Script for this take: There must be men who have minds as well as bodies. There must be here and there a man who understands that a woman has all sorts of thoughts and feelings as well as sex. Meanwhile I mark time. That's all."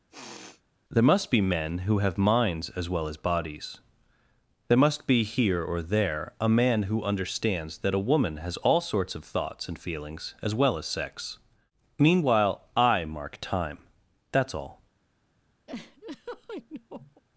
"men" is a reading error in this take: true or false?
false